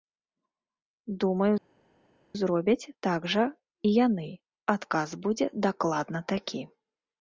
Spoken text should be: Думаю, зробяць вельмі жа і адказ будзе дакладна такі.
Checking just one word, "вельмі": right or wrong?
wrong